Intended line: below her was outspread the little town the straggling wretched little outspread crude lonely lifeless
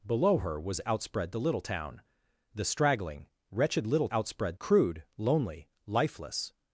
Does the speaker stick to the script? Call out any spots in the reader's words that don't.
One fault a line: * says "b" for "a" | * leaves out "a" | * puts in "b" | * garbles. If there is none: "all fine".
all fine